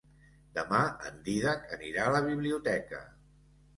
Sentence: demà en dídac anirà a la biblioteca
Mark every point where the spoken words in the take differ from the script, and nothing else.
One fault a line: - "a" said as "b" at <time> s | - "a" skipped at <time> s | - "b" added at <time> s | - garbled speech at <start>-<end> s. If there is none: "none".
none